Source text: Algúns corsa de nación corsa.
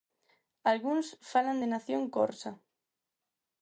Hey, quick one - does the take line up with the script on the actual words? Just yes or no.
no